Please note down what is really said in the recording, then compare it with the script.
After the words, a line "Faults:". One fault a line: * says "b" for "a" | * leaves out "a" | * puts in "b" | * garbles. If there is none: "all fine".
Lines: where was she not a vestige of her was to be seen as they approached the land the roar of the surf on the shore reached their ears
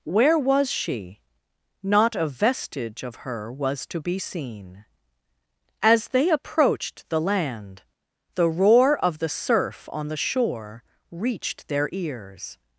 where was she not a vestige of her was to be seen as they approached the land the roar of the surf on the shore reached their ears
Faults:
all fine